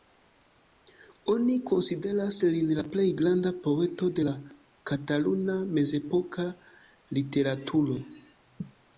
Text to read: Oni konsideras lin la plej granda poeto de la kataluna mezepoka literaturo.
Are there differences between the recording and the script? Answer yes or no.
no